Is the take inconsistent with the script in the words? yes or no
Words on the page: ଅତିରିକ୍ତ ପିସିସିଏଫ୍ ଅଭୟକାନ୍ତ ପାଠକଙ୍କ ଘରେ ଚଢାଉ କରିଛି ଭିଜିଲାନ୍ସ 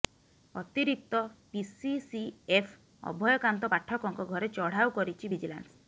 no